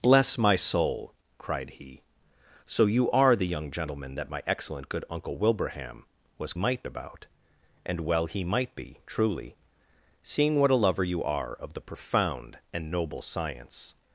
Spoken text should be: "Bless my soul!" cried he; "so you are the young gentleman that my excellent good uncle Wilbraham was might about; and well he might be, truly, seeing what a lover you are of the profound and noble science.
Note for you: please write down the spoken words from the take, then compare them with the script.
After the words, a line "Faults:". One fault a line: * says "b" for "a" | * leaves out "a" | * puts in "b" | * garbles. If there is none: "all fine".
"Bless my soul!" cried he; "so you are the young gentleman that my excellent good uncle Wilbraham was might about; and well he might be, truly, seeing what a lover you are of the profound and noble science.
Faults:
all fine